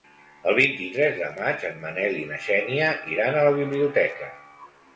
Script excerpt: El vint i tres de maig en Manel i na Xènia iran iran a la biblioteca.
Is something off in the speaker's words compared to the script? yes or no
yes